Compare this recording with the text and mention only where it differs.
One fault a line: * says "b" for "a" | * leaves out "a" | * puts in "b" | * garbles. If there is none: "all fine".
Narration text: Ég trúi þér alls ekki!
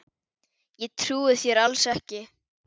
all fine